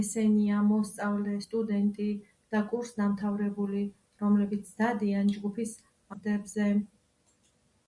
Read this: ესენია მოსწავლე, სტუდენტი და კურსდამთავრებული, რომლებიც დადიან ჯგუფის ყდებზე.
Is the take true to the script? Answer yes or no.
yes